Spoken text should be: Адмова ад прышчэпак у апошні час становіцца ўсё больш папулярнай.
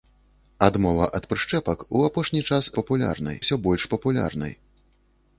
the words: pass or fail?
fail